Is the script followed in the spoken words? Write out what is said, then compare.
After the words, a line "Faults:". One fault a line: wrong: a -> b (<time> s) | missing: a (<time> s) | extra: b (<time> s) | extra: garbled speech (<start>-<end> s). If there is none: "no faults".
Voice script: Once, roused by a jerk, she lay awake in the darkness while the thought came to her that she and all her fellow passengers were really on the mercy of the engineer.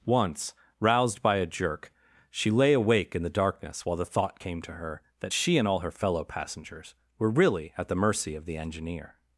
Once, roused by a jerk, she lay awake in the darkness while the thought came to her that she and all her fellow passengers were really at the mercy of the engineer.
Faults:
wrong: on -> at (7.8 s)